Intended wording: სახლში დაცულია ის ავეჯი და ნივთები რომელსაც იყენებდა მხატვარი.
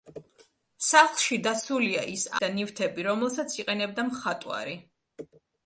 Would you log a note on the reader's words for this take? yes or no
yes